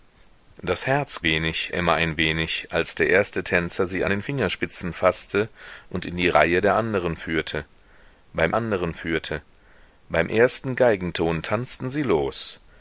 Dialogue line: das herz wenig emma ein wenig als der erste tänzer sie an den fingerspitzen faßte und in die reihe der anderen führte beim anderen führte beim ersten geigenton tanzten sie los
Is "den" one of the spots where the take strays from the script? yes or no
no